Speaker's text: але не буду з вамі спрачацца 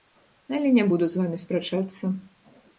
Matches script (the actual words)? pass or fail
pass